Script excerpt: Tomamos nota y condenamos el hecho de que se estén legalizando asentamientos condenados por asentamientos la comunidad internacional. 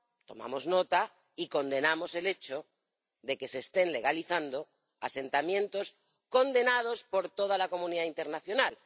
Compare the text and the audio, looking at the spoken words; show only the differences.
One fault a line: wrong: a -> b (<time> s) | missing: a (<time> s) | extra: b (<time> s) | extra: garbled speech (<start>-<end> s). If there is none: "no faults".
wrong: asentamientos -> toda (7.3 s)